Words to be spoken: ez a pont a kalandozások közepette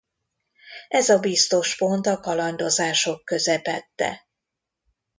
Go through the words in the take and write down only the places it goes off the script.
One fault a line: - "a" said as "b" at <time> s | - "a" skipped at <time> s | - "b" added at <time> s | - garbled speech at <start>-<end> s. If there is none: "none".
- "biztos" added at 1.2 s